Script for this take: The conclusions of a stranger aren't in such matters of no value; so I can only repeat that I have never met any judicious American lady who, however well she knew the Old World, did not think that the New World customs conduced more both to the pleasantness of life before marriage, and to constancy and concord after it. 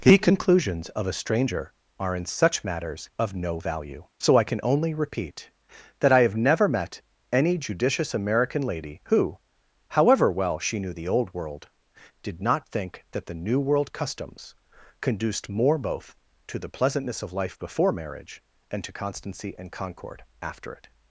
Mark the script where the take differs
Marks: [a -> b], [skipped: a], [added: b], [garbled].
The conclusions of a stranger [aren't -> are] in such matters of no value; so I can only repeat that I have never met any judicious American lady who, however well she knew the Old World, did not think that the New World customs conduced more both to the pleasantness of life before marriage, and to constancy and concord after it.